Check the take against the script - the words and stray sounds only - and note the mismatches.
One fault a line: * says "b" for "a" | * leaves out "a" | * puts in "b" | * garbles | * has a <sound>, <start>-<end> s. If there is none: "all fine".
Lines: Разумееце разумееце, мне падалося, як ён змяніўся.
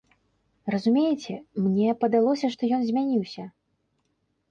* leaves out "разумееце"
* says "што" for "як"